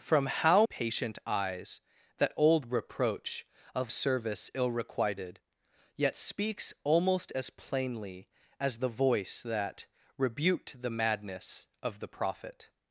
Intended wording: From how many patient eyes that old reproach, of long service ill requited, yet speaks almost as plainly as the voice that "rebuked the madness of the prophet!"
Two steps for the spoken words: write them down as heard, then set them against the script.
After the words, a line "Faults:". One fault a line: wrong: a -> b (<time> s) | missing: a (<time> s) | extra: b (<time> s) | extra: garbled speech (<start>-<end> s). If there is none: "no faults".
From how patient eyes that old reproach, of service ill requited, yet speaks almost as plainly as the voice that "rebuked the madness of the prophet!"
Faults:
missing: many (0.7 s)
missing: long (3.9 s)